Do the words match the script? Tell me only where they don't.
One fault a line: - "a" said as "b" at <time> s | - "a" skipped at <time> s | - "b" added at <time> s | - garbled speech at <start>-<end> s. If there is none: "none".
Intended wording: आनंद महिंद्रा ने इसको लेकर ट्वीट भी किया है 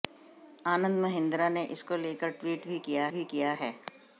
- "भी किया" added at 3.1 s